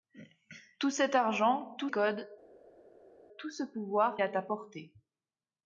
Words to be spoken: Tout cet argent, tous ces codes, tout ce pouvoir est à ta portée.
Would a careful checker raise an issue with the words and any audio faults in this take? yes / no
yes